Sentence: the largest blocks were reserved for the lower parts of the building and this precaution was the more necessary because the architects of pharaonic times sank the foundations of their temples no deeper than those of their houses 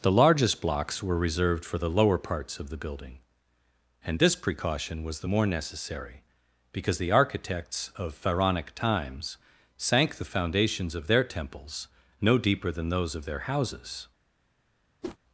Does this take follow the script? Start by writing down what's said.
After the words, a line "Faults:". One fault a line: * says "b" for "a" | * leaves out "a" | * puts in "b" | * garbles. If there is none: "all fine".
the largest blocks were reserved for the lower parts of the building and this precaution was the more necessary because the architects of pharaonic times sank the foundations of their temples no deeper than those of their houses
Faults:
all fine